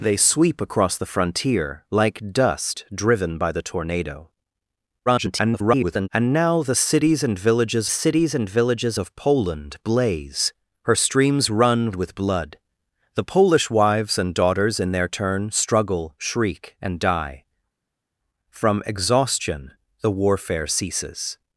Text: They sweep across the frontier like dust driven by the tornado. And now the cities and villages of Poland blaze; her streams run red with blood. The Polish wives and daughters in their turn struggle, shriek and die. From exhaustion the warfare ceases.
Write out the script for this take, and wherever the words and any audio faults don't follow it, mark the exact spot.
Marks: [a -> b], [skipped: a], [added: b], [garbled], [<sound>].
They sweep across the frontier like dust driven by the tornado. [garbled] And now the cities and villages [added: cities and villages] of Poland blaze; her streams run [skipped: red] with blood. The Polish wives and daughters in their turn struggle, shriek and die. From exhaustion the warfare ceases.